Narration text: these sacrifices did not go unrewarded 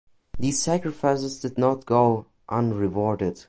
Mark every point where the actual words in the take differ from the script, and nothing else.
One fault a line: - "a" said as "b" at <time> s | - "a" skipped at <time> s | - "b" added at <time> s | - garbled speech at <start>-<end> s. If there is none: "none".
none